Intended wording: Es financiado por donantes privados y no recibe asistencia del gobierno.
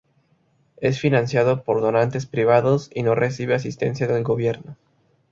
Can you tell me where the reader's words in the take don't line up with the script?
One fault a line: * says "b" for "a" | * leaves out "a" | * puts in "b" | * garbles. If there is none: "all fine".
all fine